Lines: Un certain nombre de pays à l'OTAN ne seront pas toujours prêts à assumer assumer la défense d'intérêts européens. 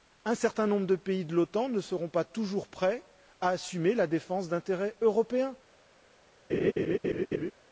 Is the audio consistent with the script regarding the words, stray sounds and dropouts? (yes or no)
no